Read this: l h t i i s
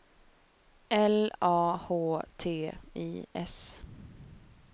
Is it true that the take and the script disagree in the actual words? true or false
true